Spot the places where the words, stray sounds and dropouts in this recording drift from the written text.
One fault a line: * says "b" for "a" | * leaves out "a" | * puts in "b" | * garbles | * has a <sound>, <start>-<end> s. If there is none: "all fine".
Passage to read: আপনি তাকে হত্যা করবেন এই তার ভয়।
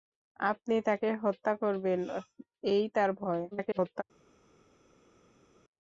* garbles